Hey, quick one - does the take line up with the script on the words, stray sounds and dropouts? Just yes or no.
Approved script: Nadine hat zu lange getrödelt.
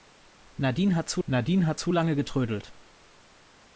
no